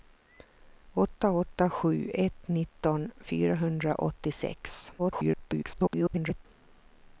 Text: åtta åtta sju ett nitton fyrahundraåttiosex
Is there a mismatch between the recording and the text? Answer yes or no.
yes